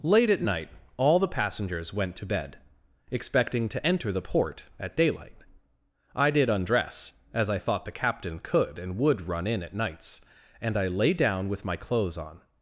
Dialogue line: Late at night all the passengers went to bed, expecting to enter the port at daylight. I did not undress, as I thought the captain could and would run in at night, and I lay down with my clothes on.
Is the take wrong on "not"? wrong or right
wrong